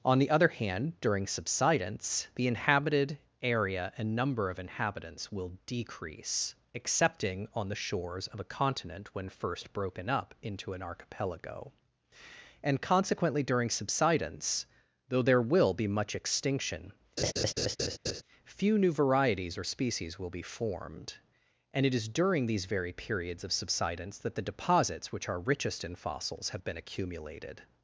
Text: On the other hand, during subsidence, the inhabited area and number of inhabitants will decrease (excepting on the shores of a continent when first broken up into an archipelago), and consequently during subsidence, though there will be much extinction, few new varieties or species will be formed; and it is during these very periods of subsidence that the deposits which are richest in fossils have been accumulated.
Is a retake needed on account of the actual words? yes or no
no